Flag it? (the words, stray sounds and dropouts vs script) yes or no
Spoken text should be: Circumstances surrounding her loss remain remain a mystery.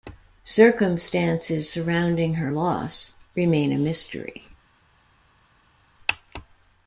yes